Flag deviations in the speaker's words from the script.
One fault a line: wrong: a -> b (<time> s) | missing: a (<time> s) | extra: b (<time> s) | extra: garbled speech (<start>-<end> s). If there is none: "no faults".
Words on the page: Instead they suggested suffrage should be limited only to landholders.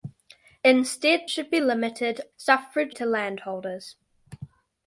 missing: they suggested suffrage (1.2 s)
wrong: only -> suffrage (2.4 s)